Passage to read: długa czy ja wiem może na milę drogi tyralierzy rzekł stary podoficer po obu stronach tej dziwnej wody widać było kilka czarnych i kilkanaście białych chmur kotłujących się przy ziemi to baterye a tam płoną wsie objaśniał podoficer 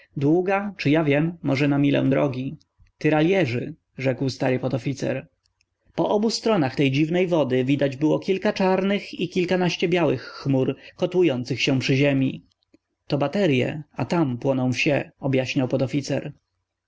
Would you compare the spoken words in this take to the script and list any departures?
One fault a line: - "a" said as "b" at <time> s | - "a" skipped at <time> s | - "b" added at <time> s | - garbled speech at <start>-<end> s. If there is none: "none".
none